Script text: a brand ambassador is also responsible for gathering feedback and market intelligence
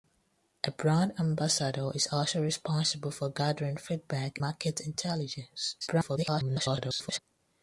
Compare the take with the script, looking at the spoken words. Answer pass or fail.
fail